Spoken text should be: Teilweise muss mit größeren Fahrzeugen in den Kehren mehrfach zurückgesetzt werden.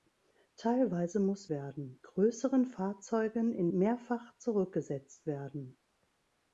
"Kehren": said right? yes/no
no